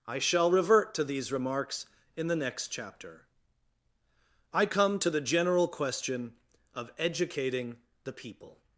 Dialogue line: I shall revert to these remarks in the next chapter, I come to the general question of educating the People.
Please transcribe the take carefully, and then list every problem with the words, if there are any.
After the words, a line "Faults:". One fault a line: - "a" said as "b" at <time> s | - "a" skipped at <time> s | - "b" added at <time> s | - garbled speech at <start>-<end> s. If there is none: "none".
I shall revert to these remarks in the next chapter, I come to the general question of educating the People.
Faults:
none